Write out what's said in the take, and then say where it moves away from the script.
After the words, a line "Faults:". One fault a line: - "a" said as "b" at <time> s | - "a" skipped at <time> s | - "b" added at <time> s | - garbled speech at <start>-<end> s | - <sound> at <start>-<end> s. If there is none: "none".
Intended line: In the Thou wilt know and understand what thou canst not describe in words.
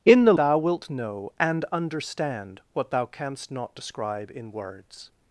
In the Thou wilt know and understand what thou canst not describe in words.
Faults:
none